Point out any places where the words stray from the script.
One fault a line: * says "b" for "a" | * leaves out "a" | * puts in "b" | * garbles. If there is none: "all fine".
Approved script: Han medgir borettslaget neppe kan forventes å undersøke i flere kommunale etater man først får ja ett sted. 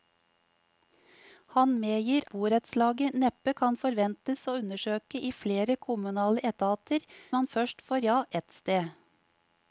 all fine